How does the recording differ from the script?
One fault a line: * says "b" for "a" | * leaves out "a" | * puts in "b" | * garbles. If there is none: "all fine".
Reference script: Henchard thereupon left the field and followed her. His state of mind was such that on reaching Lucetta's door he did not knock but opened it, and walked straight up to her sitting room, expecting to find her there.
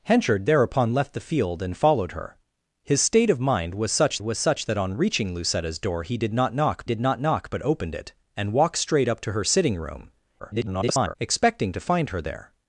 * puts in "was such"
* puts in "did not knock"
* garbles